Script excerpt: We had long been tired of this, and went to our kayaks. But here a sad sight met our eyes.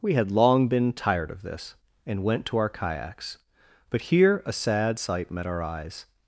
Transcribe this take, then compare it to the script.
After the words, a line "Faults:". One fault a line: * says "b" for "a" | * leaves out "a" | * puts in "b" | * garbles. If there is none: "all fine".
We had long been tired of this, and went to our kayaks. But here a sad sight met our eyes.
Faults:
all fine